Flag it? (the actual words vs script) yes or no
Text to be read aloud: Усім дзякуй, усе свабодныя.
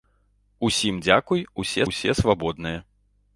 yes